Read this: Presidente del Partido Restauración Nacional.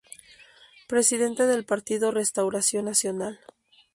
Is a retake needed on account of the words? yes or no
no